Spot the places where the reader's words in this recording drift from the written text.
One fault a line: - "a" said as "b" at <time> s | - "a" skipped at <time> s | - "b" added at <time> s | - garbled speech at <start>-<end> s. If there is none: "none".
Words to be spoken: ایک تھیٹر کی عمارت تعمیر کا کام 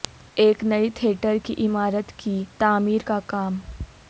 - "نئی" added at 0.6 s
- "کی" added at 2.2 s